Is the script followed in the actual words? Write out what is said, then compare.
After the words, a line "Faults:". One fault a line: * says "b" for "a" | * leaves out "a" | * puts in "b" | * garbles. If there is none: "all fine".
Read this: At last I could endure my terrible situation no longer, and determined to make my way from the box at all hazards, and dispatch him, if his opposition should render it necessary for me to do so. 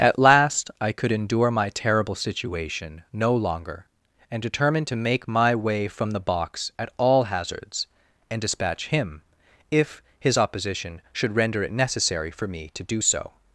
At last I could endure my terrible situation no longer, and determined to make my way from the box at all hazards, and dispatch him, if his opposition should render it necessary for me to do so.
Faults:
all fine